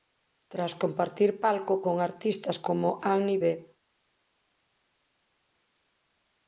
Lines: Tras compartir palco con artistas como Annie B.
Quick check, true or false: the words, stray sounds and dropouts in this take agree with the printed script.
true